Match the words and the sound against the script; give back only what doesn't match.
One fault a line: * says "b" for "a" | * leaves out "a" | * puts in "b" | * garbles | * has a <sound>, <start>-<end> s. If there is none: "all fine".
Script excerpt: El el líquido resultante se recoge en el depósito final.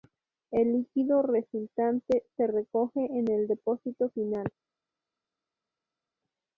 * leaves out "el"